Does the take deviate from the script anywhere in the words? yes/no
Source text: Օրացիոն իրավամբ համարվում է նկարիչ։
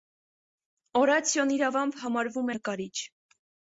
no